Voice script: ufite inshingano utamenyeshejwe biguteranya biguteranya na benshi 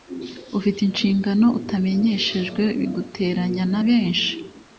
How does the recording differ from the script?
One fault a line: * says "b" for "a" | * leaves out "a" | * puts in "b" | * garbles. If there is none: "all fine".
* leaves out "biguteranya"